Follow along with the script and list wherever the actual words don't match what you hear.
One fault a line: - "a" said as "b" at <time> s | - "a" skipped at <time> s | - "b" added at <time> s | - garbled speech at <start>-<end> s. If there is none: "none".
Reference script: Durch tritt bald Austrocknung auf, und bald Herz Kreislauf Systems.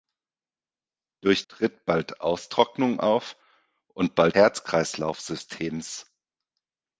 none